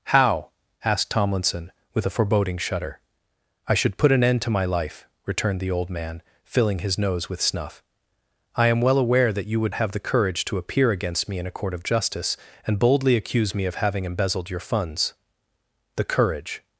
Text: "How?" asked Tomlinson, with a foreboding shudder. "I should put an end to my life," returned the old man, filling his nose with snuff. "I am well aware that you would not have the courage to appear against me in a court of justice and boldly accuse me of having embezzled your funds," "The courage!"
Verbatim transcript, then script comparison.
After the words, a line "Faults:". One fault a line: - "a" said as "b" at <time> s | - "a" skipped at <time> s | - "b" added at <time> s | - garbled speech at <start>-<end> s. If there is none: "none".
"How?" asked Tomlinson, with a foreboding shudder. "I should put an end to my life," returned the old man, filling his nose with snuff. "I am well aware that you would have the courage to appear against me in a court of justice and boldly accuse me of having embezzled your funds," "The courage!"
Faults:
- "not" skipped at 9.8 s